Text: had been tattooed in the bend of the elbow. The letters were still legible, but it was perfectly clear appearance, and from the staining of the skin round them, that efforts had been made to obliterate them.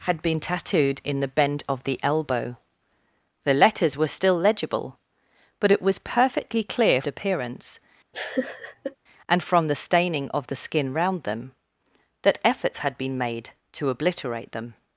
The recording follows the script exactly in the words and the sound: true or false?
false